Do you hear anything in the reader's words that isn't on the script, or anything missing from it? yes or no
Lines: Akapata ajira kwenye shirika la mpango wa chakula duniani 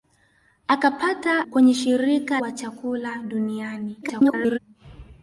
yes